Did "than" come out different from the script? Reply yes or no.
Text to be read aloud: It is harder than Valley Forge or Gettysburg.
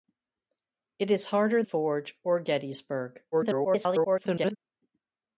yes